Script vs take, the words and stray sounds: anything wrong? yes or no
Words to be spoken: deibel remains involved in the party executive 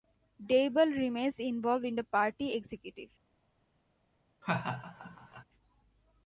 yes